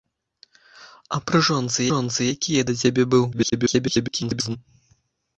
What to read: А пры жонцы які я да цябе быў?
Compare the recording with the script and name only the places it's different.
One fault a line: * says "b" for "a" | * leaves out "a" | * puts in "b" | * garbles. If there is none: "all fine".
* puts in "жонцы"
* garbles